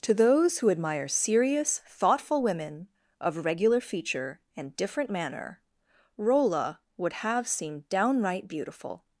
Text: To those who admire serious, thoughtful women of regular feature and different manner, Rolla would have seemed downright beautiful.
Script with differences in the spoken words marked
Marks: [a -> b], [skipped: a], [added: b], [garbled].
To those who admire serious, thoughtful women of regular feature and different manner, Rolla would have seemed downright beautiful.